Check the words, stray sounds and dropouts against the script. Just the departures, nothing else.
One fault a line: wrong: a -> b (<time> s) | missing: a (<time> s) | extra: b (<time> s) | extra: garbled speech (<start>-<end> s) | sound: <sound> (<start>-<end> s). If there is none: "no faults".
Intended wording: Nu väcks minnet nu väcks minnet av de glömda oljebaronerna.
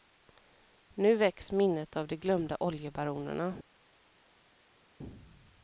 missing: nu väcks minnet (1.9 s)